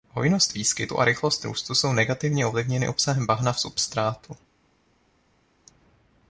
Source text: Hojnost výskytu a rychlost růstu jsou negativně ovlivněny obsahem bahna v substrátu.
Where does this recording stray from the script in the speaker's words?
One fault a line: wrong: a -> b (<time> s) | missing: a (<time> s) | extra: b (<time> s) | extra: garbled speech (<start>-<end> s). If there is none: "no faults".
no faults